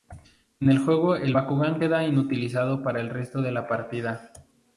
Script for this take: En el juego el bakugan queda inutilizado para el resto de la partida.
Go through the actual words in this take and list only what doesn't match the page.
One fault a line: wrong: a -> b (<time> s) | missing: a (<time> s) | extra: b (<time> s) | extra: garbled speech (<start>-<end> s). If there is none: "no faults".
no faults